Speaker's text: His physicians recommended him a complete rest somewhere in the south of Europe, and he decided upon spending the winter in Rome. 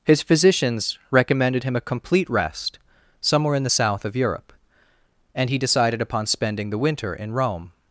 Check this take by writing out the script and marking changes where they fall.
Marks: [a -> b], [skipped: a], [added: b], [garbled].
His physicians recommended him a complete rest somewhere in the south of Europe, and he decided upon spending the winter in Rome.